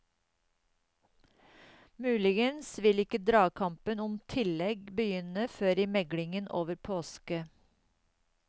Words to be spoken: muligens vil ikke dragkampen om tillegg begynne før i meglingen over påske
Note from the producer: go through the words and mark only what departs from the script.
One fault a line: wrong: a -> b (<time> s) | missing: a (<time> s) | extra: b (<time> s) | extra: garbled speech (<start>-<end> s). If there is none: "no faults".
no faults